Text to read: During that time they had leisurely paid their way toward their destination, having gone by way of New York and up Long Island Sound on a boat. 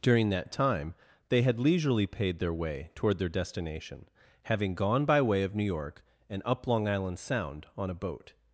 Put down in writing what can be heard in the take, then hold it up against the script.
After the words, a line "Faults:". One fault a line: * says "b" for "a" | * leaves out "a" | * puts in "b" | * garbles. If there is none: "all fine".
During that time they had leisurely paid their way toward their destination, having gone by way of New York and up Long Island Sound on a boat.
Faults:
all fine